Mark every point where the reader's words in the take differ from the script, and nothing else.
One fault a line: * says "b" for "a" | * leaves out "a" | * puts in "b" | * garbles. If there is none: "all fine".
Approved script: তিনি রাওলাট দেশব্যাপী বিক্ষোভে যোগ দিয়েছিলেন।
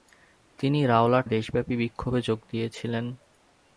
all fine